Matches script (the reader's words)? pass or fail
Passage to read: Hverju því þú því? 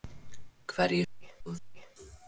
pass